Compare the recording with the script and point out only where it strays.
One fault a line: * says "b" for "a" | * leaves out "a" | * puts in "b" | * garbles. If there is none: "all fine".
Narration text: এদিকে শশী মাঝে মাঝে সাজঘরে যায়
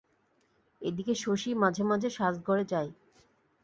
all fine